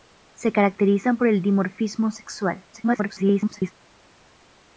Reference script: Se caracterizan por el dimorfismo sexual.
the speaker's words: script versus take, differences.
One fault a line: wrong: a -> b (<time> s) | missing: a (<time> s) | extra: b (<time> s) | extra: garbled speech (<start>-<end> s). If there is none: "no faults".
extra: garbled speech (2.7-3.7 s)